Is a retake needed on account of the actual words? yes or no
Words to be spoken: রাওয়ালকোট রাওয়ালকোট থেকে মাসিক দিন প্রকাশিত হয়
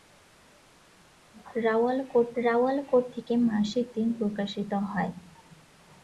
no